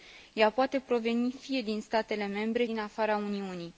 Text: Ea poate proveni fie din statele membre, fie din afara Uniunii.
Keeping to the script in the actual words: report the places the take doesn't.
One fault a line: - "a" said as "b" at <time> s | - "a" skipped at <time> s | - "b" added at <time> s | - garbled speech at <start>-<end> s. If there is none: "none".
- "fie" skipped at 2.6 s